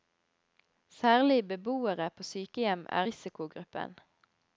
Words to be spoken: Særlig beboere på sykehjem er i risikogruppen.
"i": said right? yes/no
no